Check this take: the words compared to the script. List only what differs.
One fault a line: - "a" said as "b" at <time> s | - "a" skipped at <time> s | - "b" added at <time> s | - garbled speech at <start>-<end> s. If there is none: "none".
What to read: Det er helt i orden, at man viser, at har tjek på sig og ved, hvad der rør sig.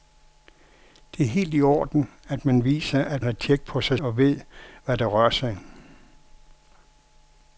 none